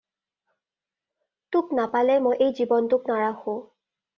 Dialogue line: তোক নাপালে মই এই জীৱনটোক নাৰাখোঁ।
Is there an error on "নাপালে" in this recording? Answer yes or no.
no